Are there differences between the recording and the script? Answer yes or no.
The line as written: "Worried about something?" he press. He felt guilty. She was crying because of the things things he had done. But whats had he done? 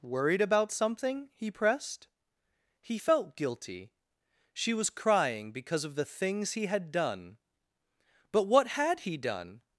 yes